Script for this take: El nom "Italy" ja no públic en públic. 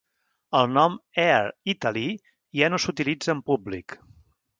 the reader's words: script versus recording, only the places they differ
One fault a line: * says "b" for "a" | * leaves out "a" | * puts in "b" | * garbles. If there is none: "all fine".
* puts in "Air"
* says "s'utilitza" for "públic"